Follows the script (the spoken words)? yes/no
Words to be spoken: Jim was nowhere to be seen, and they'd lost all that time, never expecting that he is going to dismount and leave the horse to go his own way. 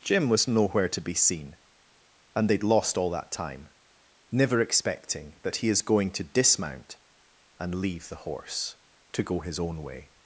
yes